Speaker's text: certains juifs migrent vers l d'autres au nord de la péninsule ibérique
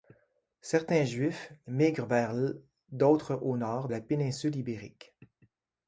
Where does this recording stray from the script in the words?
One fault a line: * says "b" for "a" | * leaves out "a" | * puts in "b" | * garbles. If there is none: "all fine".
* leaves out "de"